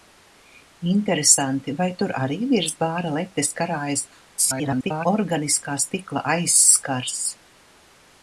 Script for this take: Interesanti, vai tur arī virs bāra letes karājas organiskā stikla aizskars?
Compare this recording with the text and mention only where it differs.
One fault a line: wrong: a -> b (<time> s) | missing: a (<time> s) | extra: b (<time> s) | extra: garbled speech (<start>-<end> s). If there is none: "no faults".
extra: garbled speech (4.4-5.1 s)